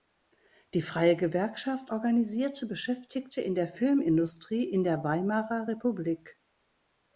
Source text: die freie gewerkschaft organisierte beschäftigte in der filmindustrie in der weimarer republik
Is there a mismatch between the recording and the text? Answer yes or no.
no